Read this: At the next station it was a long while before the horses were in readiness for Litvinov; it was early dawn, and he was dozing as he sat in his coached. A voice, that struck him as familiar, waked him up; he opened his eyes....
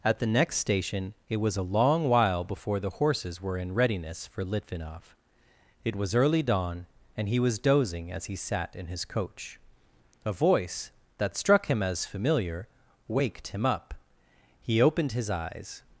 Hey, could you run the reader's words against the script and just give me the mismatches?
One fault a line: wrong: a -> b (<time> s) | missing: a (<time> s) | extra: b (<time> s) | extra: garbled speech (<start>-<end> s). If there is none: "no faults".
wrong: coached -> coach (9.1 s)